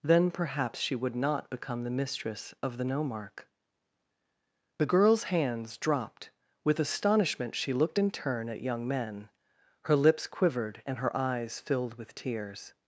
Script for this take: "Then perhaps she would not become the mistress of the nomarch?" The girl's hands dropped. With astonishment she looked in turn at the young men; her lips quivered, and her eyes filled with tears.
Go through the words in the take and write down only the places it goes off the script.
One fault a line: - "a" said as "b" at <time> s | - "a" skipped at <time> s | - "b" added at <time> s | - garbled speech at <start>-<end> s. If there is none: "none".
- "the" skipped at 8.6 s